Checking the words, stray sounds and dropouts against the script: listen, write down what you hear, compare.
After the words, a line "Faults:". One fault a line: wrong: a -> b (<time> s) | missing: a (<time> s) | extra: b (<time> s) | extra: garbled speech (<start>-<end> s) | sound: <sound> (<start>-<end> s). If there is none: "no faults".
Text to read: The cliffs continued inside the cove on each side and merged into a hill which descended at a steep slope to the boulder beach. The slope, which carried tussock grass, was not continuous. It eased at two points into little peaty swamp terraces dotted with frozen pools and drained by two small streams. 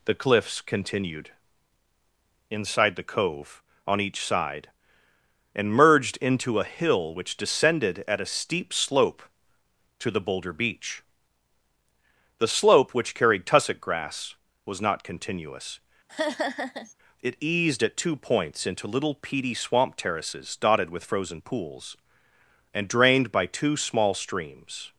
The cliffs continued inside the cove on each side and merged into a hill which descended at a steep slope to the boulder beach. The slope, which carried tussock grass, was not continuous. It eased at two points into little peaty swamp terraces dotted with frozen pools and drained by two small streams.
Faults:
sound: laugh (16.1-16.9 s)